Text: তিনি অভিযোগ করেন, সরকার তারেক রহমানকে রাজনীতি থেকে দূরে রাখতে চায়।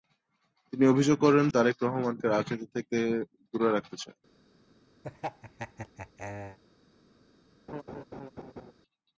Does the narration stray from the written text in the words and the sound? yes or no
yes